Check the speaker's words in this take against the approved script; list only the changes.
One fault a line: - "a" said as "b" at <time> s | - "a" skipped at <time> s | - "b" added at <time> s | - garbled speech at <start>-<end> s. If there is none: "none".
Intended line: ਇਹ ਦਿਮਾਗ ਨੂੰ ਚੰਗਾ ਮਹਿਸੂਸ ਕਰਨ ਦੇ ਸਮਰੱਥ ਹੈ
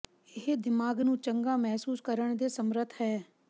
none